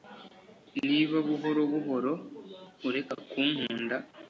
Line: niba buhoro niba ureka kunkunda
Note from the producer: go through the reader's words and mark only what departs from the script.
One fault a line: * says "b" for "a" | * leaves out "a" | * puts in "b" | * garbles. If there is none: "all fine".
* says "buhoro" for "niba"